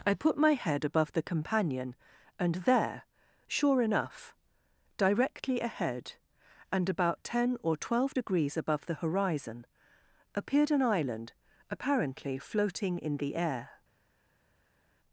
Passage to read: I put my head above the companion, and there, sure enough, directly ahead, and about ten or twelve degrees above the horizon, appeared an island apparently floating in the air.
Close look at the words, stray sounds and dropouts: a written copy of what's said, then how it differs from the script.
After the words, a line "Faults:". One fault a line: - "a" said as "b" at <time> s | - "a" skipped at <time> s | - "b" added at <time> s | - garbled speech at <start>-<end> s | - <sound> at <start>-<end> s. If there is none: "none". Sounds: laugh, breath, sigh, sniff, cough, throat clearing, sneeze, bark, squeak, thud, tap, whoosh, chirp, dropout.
I put my head above the companion, and there, sure enough, directly ahead, and about ten or twelve degrees above the horizon, appeared an island apparently floating in the air.
Faults:
none